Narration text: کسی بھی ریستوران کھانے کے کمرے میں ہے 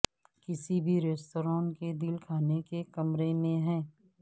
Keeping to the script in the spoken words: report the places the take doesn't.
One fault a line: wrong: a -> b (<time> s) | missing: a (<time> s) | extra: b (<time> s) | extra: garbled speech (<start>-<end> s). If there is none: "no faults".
extra: کے دل (1.7 s)